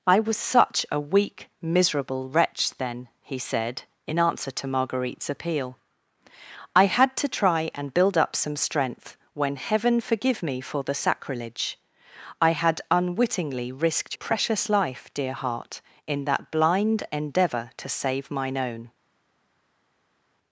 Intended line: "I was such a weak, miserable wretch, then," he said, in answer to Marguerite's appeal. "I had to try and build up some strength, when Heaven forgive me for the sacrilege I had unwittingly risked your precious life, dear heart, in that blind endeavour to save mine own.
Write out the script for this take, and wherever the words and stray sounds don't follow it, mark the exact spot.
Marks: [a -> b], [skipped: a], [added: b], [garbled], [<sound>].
"I was such a weak, miserable wretch, then," he said, in answer to Marguerite's appeal. "I had to try and build up some strength, when Heaven forgive me for the sacrilege I had unwittingly risked [skipped: your] precious life, dear heart, in that blind endeavour to save mine own.